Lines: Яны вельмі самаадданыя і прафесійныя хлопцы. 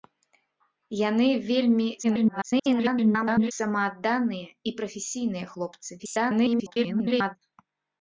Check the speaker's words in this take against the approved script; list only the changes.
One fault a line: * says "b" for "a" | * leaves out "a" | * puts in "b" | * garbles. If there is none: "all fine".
* garbles
* garbles